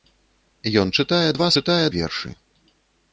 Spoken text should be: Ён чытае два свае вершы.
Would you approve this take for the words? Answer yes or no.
no